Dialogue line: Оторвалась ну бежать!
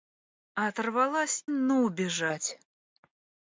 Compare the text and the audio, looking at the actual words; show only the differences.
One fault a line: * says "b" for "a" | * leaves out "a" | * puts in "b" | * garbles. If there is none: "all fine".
all fine